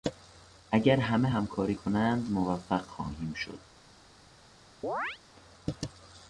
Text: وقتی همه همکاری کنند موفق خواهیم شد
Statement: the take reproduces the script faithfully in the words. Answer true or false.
false